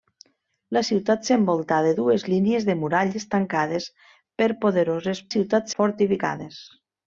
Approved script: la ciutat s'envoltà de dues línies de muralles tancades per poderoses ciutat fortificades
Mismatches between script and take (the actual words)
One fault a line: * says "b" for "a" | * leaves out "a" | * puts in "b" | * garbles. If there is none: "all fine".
all fine